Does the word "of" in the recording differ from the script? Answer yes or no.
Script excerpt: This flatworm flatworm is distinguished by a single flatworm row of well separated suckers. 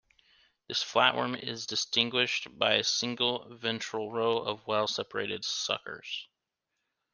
no